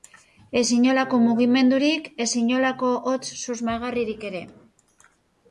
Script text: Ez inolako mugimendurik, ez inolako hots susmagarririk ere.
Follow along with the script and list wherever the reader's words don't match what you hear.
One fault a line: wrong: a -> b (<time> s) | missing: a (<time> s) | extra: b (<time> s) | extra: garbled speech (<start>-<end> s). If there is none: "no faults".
no faults